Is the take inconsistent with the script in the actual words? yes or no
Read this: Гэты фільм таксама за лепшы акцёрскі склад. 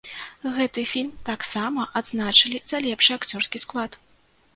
yes